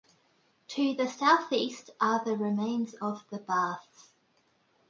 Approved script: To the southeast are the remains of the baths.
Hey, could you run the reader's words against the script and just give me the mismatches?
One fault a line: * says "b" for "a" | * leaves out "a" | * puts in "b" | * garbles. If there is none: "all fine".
all fine